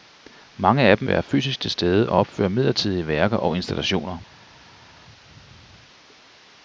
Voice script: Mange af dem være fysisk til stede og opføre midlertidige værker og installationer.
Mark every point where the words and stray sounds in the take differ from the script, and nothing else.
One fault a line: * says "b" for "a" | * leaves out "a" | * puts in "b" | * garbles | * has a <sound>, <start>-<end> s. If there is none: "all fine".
all fine